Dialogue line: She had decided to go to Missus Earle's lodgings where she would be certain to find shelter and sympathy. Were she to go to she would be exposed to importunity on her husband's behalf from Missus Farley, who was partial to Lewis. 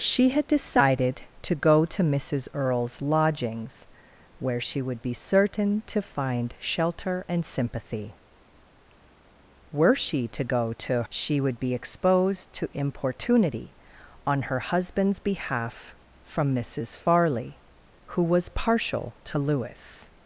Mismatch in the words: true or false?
false